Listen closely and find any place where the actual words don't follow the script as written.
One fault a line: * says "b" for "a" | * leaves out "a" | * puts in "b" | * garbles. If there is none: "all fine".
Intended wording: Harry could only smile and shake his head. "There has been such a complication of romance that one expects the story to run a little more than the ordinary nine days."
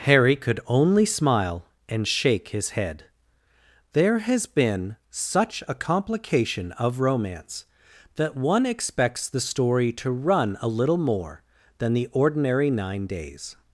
all fine